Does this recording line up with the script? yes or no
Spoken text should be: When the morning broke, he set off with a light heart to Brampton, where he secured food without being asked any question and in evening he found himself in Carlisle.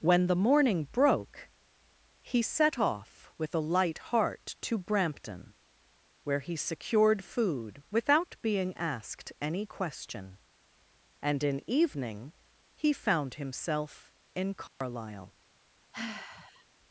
yes